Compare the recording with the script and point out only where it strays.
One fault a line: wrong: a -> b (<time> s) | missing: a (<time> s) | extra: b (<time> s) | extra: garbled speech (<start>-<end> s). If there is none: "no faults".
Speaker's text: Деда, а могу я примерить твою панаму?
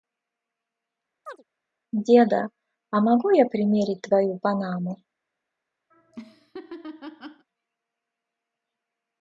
no faults